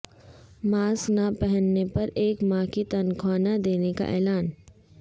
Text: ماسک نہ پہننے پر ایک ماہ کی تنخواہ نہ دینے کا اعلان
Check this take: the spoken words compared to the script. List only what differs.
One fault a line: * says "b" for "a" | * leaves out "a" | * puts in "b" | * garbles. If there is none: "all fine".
all fine